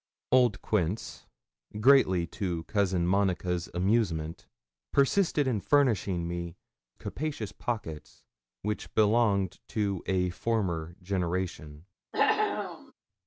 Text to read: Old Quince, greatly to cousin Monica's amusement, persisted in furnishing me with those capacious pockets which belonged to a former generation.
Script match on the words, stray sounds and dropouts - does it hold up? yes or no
no